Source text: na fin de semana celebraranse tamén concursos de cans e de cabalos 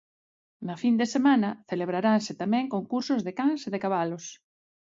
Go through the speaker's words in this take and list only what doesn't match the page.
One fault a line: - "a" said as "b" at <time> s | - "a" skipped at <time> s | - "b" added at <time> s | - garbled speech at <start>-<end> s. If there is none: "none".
none